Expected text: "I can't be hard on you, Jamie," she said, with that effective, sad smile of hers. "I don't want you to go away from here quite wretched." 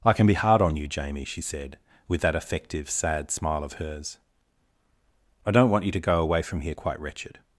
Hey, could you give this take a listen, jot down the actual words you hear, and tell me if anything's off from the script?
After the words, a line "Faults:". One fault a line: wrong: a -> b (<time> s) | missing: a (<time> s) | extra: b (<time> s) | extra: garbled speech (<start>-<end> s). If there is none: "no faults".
"I can be hard on you, Jamie," she said, with that effective, sad smile of hers. "I don't want you to go away from here quite wretched."
Faults:
wrong: can't -> can (0.1 s)